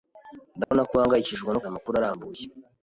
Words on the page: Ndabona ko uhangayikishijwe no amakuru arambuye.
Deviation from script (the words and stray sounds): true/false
true